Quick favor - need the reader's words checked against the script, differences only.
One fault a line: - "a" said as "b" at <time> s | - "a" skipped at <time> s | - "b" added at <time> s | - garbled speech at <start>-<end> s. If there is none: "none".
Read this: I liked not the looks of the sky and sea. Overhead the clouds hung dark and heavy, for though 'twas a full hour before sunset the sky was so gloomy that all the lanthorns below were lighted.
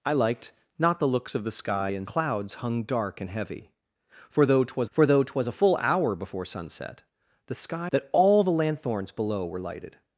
- "sea Overhead the" skipped at 2.1 s
- "for though twas" added at 4.9 s
- "was so gloomy" skipped at 7.9 s